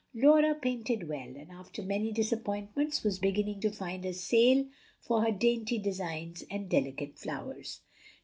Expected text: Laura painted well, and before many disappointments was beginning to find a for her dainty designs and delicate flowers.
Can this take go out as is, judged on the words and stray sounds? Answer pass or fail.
fail